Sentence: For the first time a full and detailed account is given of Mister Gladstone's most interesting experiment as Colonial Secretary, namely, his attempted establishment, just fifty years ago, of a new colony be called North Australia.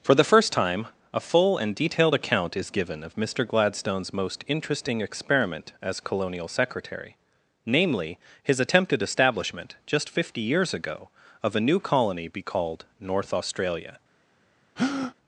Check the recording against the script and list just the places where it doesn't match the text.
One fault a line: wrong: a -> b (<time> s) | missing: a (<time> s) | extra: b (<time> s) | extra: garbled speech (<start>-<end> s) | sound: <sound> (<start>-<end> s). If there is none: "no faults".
sound: breath (14.8-15.1 s)